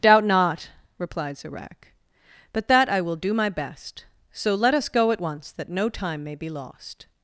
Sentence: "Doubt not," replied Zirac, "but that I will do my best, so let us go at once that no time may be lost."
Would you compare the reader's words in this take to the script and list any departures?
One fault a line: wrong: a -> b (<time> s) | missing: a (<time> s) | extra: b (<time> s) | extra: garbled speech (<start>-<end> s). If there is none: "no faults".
no faults